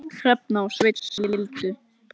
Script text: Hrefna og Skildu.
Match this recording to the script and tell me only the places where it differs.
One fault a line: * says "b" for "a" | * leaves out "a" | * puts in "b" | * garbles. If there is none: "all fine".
* puts in "Sveinn"